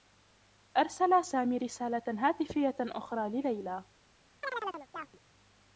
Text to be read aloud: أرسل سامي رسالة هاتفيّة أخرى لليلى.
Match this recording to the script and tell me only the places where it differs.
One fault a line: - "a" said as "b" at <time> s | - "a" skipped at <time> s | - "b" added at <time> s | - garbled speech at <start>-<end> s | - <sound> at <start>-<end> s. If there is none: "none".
- chirp at 4.4-5.2 s